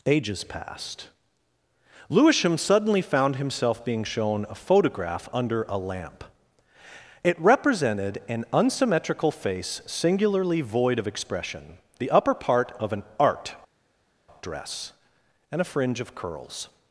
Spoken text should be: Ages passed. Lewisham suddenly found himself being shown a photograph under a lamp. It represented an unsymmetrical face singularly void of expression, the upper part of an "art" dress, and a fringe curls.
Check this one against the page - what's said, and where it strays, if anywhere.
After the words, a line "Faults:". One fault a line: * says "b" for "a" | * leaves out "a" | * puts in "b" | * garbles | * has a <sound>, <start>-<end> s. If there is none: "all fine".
Ages passed. Lewisham suddenly found himself being shown a photograph under a lamp. It represented an unsymmetrical face singularly void of expression, the upper part of an "art" dress, and a fringe of curls.
Faults:
* puts in "of"